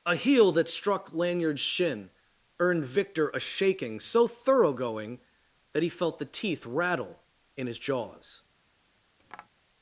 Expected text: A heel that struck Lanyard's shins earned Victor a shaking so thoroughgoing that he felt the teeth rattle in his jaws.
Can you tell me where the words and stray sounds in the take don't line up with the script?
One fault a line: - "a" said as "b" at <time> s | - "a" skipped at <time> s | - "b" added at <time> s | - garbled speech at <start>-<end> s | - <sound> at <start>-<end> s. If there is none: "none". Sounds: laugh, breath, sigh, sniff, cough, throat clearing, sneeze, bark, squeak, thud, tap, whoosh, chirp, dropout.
- "shins" said as "shin" at 1.6 s
- tap at 9.2-9.5 s